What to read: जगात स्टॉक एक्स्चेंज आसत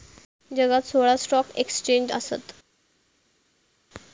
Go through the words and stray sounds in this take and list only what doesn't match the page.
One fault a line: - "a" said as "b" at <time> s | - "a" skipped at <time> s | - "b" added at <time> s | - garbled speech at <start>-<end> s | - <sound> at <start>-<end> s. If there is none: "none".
- "सोळा" added at 0.8 s